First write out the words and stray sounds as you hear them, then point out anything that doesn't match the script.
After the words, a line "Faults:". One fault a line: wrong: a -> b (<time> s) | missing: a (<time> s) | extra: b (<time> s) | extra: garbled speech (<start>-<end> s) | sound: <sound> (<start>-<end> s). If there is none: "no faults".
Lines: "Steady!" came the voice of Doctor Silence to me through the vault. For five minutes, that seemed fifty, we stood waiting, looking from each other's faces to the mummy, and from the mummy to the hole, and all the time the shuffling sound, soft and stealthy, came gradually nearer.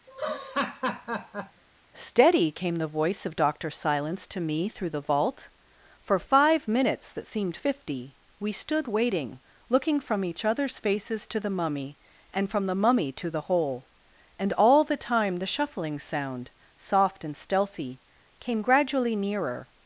"Steady!" came the voice of Doctor Silence to me through the vault. For five minutes, that seemed fifty, we stood waiting, looking from each other's faces to the mummy, and from the mummy to the hole, and all the time the shuffling sound, soft and stealthy, came gradually nearer.
Faults:
sound: laugh (0.1-1.6 s)